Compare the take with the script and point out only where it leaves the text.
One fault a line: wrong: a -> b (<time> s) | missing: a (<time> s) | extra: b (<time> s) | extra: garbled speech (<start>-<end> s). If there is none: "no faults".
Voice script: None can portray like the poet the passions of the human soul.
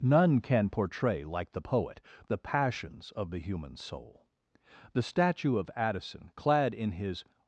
extra: The statue of Addison clad in his (4.9 s)